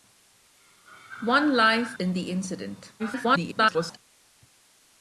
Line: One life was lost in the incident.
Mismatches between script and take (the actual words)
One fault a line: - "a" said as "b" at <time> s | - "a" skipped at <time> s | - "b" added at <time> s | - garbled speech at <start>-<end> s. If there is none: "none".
- "was lost" skipped at 2.0 s
- garbled speech at 3.0-4.0 s